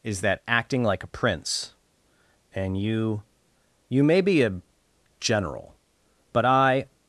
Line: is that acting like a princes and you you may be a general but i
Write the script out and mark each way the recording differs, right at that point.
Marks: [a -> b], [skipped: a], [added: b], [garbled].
is that acting like a [princes -> prince] and you you may be a general but i